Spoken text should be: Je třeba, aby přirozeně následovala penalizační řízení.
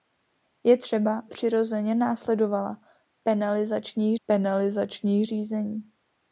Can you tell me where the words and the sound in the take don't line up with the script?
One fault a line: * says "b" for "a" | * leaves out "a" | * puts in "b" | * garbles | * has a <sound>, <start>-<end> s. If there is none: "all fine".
* leaves out "aby"
* puts in "penalizační"